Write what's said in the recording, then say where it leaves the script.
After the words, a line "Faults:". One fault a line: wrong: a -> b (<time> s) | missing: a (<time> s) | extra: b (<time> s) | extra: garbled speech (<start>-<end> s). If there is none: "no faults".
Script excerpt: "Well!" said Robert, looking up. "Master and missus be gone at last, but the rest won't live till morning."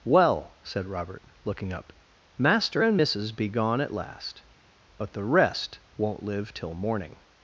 "Well!" said Robert, looking up. "Master and missus be gone at last, but the rest won't live till morning."
Faults:
no faults